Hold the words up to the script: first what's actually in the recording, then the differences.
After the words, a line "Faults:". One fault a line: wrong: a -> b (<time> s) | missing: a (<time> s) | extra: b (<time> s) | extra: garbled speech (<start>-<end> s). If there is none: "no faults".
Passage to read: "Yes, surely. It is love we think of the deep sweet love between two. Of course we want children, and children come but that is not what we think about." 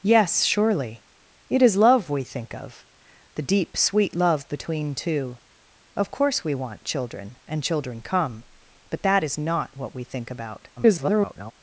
"Yes, surely. It is love we think of the deep sweet love between two. Of course we want children, and children come but that is not what we think about." [garbled]
Faults:
extra: garbled speech (10.8-11.5 s)